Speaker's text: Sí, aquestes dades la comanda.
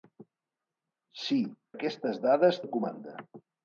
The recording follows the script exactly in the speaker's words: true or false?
true